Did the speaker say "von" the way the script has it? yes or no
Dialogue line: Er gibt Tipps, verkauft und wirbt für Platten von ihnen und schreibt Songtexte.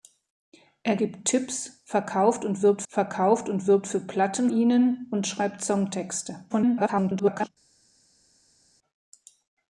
no